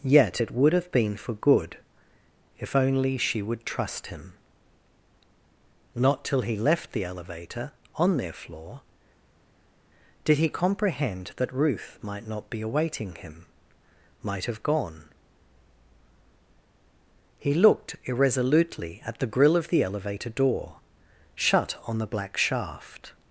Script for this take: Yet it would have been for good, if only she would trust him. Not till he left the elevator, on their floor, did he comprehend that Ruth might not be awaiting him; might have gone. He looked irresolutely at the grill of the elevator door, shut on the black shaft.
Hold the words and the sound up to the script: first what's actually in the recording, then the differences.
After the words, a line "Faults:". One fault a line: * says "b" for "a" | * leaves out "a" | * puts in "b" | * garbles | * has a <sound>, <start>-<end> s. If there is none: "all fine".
Yet it would have been for good, if only she would trust him. Not till he left the elevator, on their floor, did he comprehend that Ruth might not be awaiting him; might have gone. He looked irresolutely at the grill of the elevator door, shut on the black shaft.
Faults:
all fine